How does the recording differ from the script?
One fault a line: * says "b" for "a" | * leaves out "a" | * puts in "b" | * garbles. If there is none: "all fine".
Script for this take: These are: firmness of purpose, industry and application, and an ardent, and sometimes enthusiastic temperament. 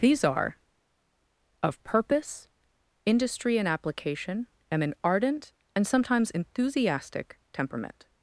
* leaves out "firmness"